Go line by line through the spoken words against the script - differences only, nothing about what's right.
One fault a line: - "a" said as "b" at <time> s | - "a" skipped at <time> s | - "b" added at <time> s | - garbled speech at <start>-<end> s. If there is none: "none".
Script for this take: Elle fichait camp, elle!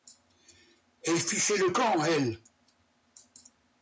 - "le" added at 1.6 s